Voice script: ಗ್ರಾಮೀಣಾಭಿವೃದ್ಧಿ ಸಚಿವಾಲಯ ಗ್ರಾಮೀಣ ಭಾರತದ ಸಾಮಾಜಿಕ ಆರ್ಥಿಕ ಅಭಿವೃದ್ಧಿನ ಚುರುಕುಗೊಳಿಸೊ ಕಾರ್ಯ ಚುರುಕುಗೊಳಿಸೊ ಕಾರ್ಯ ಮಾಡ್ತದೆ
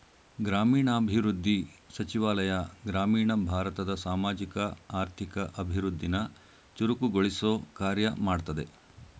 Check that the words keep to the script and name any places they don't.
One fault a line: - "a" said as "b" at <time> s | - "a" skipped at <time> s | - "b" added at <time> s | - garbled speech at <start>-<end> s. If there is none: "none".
- "ಚುರುಕುಗೊಳಿಸೊ ಕಾರ್ಯ" skipped at 8.1 s